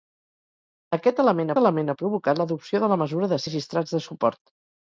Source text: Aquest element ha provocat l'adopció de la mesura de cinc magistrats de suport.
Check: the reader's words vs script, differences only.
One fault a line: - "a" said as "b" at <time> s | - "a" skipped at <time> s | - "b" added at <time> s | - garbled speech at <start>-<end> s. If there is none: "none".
- "element" added at 1.6 s
- "cinc" skipped at 3.4 s